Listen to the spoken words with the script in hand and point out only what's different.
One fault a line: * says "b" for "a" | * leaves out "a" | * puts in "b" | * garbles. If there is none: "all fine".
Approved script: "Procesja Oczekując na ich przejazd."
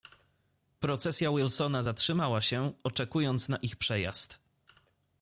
* puts in "Wilsona zatrzymała się"